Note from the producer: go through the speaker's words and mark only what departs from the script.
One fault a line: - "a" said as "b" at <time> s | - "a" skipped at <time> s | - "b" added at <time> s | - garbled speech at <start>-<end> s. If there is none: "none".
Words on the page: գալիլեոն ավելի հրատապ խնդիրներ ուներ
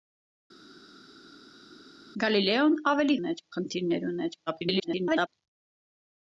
- "հրատապ" said as "ուներ" at 3.2 s
- garbled speech at 4.5-5.3 s